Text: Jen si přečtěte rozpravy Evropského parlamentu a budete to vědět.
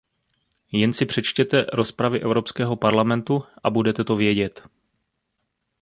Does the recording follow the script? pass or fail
pass